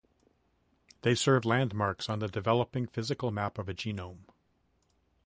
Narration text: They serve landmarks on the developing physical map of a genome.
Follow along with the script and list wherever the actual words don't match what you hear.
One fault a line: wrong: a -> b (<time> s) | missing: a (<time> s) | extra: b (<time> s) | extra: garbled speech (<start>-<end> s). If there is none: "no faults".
no faults